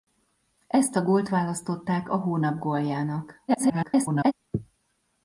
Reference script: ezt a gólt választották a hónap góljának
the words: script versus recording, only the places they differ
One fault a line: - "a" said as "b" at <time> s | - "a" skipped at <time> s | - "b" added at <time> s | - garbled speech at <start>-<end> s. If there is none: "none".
- garbled speech at 3.5-4.3 s